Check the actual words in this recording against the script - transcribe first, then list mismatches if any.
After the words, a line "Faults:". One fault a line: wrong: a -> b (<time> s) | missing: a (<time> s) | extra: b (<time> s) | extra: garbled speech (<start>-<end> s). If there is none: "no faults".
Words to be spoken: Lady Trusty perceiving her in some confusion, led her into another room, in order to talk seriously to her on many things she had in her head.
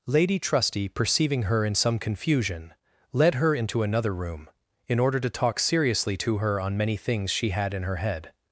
Lady Trusty perceiving her in some confusion, led her into another room, in order to talk seriously to her on many things she had in her head.
Faults:
no faults